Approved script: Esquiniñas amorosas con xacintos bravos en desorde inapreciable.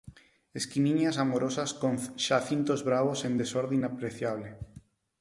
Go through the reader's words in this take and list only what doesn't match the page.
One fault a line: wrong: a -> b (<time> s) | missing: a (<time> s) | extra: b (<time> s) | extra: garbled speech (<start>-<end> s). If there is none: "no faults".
no faults